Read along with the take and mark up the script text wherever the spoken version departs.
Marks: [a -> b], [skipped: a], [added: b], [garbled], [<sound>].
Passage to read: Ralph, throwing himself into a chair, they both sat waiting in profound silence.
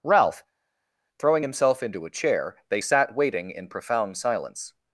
Ralph, throwing himself into a chair, they [skipped: both] sat waiting in profound silence.